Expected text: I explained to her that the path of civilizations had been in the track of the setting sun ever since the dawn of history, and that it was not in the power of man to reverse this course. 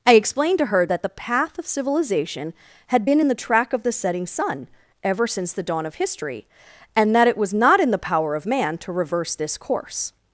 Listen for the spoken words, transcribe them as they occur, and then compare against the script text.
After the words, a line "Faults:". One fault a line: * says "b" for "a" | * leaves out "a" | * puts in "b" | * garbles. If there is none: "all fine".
I explained to her that the path of civilization had been in the track of the setting sun ever since the dawn of history, and that it was not in the power of man to reverse this course.
Faults:
* says "civilization" for "civilizations"